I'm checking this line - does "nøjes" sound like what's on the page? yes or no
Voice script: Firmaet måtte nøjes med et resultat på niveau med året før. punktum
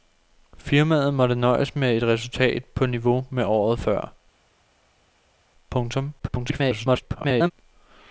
yes